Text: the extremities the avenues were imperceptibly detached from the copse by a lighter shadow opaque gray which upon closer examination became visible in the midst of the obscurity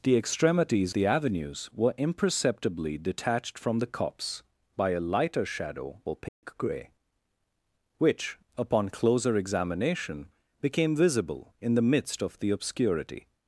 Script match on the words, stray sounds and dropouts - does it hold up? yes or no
no